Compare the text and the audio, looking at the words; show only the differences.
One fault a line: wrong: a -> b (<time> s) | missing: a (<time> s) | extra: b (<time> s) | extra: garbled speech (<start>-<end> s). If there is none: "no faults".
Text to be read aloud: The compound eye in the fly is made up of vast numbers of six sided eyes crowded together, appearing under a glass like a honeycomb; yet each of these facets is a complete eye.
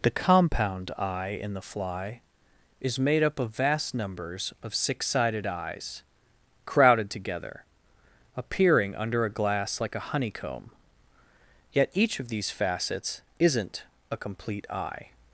wrong: is -> isn't (13.4 s)